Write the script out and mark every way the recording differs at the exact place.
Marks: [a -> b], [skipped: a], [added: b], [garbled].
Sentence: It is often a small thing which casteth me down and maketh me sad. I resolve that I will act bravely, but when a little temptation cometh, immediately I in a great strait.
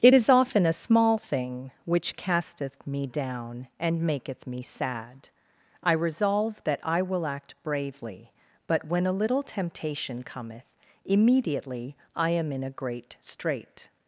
It is often a small thing which casteth me down and maketh me sad. I resolve that I will act bravely, but when a little temptation cometh, immediately I [added: am] in a great strait.